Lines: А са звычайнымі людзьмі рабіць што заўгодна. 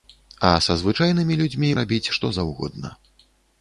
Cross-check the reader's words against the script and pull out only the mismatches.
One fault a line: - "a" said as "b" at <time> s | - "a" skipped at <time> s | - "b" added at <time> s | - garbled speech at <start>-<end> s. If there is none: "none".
none